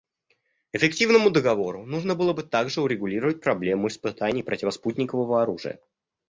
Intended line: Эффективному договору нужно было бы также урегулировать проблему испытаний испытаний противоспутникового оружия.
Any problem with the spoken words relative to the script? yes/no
yes